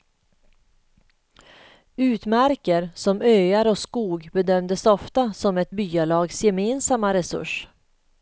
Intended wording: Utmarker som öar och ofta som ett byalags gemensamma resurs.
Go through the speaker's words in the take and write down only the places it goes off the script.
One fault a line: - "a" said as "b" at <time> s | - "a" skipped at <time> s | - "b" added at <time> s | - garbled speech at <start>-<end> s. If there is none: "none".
- "skog bedömdes" added at 3.8 s